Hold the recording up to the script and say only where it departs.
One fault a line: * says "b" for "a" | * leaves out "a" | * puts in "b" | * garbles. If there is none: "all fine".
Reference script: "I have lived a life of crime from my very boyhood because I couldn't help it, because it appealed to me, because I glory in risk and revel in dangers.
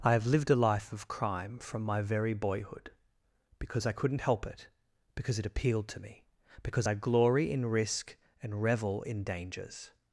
all fine